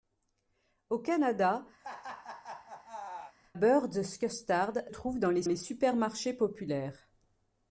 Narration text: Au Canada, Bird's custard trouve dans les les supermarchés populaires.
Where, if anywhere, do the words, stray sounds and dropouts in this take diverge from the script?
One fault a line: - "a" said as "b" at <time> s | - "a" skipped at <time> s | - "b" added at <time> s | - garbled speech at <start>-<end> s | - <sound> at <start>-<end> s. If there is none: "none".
- laugh at 1.8-3.3 s